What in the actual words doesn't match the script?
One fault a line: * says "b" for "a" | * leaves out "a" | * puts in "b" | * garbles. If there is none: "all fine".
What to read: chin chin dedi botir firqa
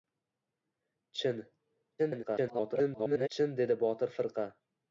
* garbles